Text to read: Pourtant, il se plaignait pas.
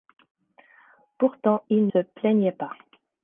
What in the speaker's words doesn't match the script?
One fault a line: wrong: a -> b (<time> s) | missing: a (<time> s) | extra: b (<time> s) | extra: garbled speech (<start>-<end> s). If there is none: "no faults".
no faults